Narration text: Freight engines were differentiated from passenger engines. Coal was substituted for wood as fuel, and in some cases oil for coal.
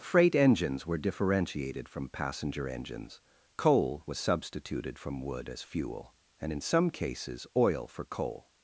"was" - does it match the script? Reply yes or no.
yes